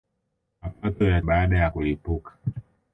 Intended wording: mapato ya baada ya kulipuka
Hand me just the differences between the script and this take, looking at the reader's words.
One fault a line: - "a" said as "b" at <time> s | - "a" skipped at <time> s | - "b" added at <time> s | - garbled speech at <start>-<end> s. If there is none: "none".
none